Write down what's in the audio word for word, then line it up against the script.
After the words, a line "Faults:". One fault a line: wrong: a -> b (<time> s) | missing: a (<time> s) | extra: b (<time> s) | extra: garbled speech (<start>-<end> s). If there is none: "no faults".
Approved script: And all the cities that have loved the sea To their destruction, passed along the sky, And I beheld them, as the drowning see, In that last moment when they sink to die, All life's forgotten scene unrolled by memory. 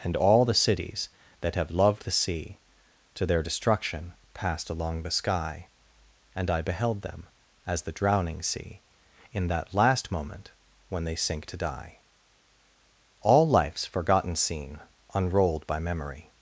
And all the cities that have loved the sea To their destruction, passed along the sky, And I beheld them, as the drowning see, In that last moment when they sink to die, All life's forgotten scene unrolled by memory.
Faults:
no faults